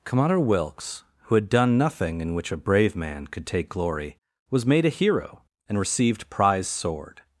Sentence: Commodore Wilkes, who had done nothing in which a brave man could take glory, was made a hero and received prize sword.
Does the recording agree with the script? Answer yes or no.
yes